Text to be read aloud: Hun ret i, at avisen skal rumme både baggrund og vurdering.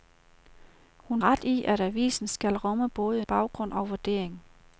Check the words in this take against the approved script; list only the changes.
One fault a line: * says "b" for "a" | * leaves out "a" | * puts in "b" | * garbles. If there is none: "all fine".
all fine